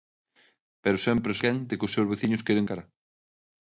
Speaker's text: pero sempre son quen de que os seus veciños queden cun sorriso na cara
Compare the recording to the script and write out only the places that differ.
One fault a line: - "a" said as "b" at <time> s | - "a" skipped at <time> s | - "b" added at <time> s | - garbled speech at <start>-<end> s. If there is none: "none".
- "son" skipped at 1.3 s
- "cun sorriso na" skipped at 2.7 s